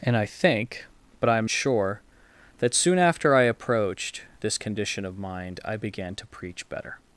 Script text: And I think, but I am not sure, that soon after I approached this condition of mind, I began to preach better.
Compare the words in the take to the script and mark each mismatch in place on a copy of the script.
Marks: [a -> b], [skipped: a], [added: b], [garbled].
And I think, but I am [skipped: not] sure, that soon after I approached this condition of mind, I began to preach better.